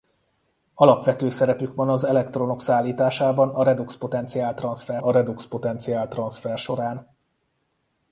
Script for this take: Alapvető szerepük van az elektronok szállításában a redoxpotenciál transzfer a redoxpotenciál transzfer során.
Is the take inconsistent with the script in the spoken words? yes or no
no